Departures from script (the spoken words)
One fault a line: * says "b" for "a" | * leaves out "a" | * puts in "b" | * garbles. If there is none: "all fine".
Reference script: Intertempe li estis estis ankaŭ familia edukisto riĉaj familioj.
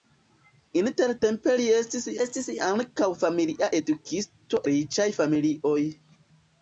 all fine